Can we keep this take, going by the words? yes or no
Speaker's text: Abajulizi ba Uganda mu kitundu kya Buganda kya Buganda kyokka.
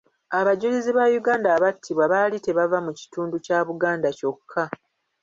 no